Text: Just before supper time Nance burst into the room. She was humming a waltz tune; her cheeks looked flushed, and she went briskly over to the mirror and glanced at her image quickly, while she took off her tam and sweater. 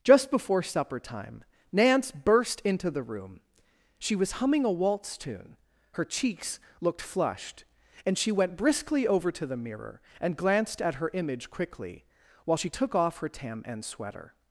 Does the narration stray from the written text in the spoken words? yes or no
no